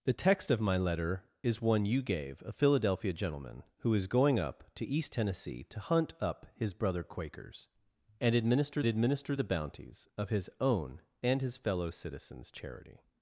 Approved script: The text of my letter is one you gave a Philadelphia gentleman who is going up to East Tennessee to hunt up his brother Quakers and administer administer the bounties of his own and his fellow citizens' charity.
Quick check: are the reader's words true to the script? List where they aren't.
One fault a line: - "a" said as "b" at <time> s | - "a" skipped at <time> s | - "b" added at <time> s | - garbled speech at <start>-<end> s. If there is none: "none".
none